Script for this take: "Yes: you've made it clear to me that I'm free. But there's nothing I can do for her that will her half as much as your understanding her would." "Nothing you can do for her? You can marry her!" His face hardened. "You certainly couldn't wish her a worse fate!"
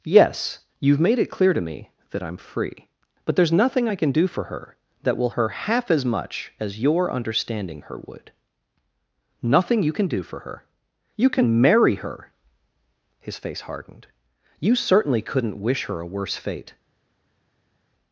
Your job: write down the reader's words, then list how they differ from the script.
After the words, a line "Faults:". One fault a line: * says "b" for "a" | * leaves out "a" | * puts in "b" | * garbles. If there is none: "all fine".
"Yes: you've made it clear to me that I'm free. But there's nothing I can do for her that will her half as much as your understanding her would." "Nothing you can do for her? You can marry her!" His face hardened. "You certainly couldn't wish her a worse fate!"
Faults:
all fine